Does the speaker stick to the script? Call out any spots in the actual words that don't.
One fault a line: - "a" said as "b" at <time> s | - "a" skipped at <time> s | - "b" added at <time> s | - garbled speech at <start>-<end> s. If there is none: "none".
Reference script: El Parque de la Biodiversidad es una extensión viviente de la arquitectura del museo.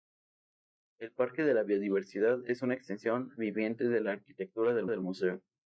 - "del" added at 4.9 s